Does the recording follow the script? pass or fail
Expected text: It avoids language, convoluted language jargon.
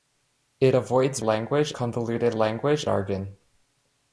pass